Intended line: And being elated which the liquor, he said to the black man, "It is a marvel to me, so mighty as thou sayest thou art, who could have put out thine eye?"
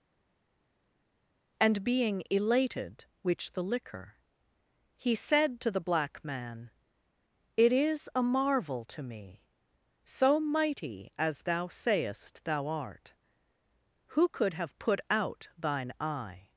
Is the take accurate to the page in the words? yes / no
yes